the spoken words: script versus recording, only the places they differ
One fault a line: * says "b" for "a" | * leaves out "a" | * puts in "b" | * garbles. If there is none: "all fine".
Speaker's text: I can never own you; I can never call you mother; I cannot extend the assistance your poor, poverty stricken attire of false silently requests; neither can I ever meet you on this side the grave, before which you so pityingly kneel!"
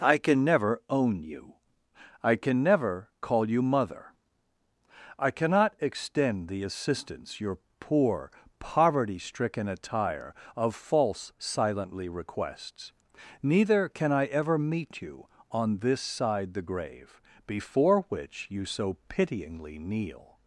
all fine